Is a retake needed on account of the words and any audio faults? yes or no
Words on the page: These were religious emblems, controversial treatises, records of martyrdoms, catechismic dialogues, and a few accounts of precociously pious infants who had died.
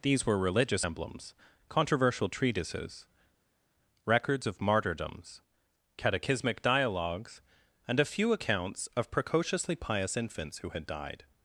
no